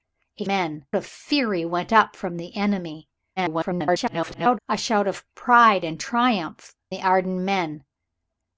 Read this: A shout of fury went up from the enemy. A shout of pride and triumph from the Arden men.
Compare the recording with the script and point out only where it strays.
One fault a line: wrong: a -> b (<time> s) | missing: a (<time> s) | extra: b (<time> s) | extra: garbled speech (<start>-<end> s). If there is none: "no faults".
wrong: shout -> men (0.4 s)
extra: garbled speech (3.4-4.6 s)
missing: from (6.7 s)